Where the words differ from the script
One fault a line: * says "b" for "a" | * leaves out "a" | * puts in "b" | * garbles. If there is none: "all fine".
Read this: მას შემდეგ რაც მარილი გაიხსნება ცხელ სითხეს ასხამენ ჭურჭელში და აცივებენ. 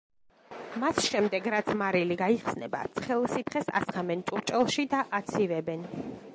all fine